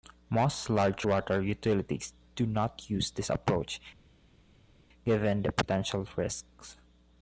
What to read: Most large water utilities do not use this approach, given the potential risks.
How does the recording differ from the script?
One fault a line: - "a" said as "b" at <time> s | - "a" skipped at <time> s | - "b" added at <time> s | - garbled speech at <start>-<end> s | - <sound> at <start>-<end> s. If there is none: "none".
none